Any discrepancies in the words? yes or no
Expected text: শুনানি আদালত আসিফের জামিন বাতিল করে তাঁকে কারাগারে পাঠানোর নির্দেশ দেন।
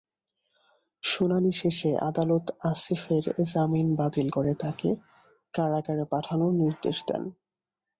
yes